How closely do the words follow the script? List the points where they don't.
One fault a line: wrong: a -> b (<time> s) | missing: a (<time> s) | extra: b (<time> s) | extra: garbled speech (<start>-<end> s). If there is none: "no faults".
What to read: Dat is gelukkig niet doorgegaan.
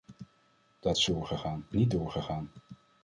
wrong: gelukkig -> doorgegaan (1.1 s)